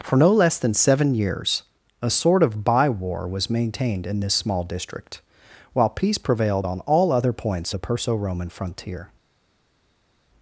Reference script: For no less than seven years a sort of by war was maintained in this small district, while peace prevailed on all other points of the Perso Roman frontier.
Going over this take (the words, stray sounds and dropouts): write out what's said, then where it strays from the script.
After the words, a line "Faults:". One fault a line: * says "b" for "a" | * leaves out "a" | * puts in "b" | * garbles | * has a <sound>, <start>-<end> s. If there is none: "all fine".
For no less than seven years a sort of by war was maintained in this small district, while peace prevailed on all other points the Perso Roman frontier.
Faults:
* leaves out "of"